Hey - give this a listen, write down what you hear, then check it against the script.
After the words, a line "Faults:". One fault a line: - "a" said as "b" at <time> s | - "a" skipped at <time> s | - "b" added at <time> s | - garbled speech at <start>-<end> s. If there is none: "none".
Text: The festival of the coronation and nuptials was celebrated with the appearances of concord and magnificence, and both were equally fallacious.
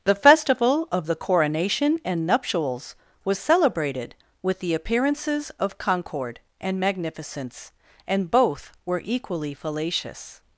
The festival of the coronation and nuptials was celebrated with the appearances of concord and magnificence, and both were equally fallacious.
Faults:
none